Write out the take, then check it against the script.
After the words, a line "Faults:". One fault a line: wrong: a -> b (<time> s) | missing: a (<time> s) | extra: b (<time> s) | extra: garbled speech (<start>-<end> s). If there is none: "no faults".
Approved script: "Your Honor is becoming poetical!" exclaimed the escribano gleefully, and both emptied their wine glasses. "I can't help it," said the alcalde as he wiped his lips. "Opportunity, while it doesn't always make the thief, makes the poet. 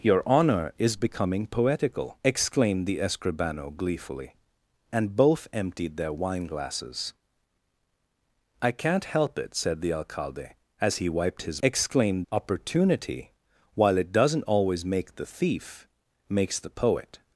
"Your Honor is becoming poetical!" exclaimed the escribano gleefully, and both emptied their wine glasses. "I can't help it," said the alcalde as he wiped his exclaimed. "Opportunity, while it doesn't always make the thief, makes the poet.
Faults:
wrong: lips -> exclaimed (11.6 s)